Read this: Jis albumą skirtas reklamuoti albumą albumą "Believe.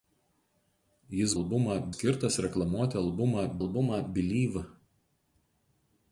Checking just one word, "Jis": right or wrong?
right